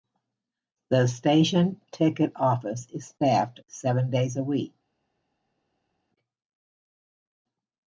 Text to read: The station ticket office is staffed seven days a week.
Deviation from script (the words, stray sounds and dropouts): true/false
false